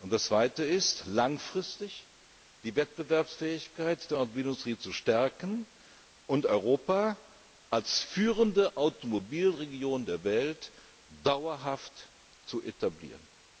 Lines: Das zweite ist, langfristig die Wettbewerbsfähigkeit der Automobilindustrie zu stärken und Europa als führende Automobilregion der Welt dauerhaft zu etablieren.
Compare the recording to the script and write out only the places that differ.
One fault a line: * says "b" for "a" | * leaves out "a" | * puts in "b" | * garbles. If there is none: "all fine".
all fine